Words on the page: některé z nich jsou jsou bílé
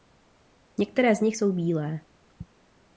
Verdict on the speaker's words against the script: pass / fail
fail